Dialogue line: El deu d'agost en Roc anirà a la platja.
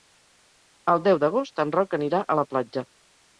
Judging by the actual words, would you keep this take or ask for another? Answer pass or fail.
pass